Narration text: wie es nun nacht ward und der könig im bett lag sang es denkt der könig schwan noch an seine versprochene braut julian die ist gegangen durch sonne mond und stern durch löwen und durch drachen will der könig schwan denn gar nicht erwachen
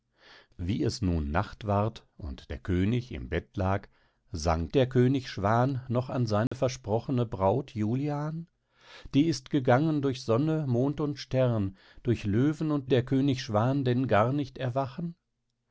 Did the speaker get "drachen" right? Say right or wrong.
wrong